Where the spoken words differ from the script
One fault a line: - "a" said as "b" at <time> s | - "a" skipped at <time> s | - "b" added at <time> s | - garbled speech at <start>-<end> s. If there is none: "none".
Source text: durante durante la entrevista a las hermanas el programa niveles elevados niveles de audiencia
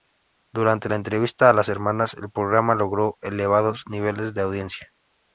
- "durante" skipped at 0.9 s
- "niveles" said as "logró" at 2.7 s